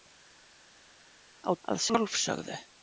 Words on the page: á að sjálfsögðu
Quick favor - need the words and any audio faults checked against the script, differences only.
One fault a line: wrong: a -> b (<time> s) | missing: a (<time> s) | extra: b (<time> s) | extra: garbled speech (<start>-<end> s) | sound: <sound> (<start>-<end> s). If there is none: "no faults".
no faults